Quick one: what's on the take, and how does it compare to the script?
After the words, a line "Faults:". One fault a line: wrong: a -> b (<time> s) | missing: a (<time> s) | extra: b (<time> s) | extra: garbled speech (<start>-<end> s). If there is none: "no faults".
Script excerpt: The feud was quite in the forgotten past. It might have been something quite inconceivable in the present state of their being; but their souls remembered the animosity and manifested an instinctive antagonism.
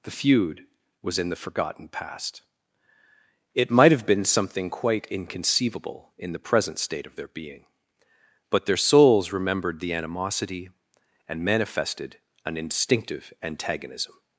The feud was in the forgotten past. It might have been something quite inconceivable in the present state of their being; but their souls remembered the animosity and manifested an instinctive antagonism.
Faults:
missing: quite (1.2 s)